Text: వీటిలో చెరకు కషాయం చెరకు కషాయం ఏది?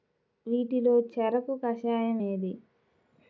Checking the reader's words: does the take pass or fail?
fail